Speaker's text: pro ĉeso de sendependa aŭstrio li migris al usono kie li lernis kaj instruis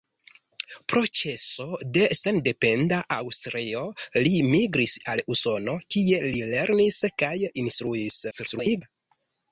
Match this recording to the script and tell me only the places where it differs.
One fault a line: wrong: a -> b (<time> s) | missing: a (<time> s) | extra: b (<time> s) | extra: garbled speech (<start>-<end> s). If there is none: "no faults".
extra: garbled speech (8.3-8.8 s)